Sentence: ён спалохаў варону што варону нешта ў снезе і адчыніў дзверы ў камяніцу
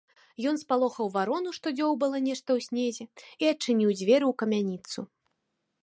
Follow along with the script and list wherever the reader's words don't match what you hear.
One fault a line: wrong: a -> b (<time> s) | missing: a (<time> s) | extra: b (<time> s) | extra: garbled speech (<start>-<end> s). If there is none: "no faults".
wrong: варону -> дзёўбала (1.8 s)